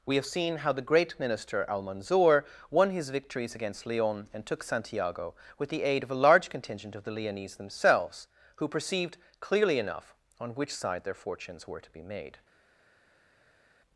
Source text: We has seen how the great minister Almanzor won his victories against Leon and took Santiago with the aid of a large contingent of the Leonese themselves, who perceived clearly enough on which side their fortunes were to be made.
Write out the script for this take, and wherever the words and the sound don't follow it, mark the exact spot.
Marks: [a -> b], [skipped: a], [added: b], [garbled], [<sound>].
We [has -> have] seen how the great minister Almanzor won his victories against Leon and took Santiago with the aid of a large contingent of the Leonese themselves, who perceived clearly enough on which side their fortunes were to be made.